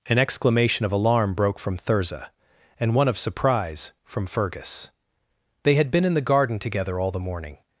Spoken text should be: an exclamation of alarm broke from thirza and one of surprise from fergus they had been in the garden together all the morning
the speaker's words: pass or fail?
pass